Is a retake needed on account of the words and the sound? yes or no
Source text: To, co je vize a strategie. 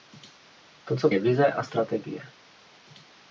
no